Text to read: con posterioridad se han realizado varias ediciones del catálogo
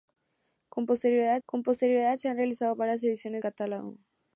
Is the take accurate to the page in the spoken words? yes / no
no